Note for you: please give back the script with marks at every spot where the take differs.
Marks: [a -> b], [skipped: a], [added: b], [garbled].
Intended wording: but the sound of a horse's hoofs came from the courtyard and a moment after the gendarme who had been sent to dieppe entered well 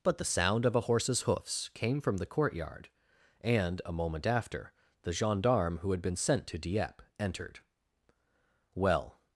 but the sound of a horse's hoofs came from the courtyard and a moment after the gendarme who had been sent to dieppe entered well